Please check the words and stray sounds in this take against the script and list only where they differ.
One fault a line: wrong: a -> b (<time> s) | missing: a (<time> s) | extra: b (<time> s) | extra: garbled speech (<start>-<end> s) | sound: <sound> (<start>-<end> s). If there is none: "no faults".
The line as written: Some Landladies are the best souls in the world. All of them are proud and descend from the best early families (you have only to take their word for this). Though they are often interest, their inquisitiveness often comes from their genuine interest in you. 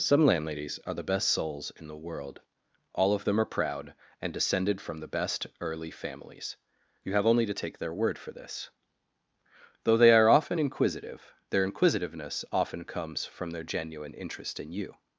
wrong: descend -> descended (4.3 s)
wrong: interest -> inquisitive (10.6 s)